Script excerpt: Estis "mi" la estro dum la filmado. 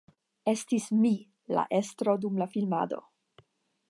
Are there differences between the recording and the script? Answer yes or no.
no